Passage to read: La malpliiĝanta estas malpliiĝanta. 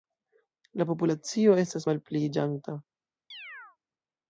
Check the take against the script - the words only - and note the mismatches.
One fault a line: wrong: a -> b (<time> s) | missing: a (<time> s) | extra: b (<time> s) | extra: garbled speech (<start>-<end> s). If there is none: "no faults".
wrong: malpliiĝanta -> populacio (0.9 s)